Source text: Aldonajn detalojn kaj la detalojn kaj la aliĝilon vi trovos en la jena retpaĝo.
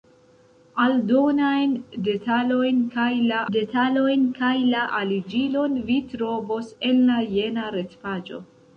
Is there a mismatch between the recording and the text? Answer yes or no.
no